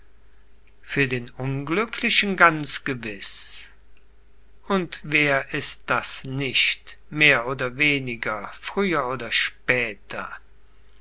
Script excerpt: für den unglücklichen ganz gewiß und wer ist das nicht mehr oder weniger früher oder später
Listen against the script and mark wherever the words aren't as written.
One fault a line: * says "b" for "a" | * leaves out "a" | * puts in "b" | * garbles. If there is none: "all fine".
all fine